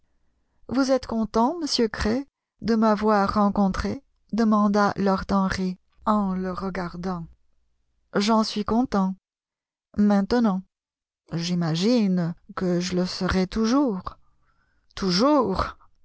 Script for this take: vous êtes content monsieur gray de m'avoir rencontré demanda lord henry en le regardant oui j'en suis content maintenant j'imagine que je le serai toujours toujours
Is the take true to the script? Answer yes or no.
no